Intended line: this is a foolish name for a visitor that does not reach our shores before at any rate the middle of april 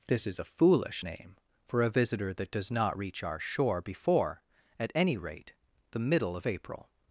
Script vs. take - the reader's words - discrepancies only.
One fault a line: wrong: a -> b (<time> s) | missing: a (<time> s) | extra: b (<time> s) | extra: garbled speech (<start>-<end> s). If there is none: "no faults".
wrong: shores -> shore (3.4 s)